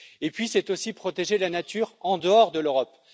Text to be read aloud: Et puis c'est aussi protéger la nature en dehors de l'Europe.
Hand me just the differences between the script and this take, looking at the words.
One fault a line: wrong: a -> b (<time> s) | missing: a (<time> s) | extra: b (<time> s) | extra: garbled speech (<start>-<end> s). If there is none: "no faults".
no faults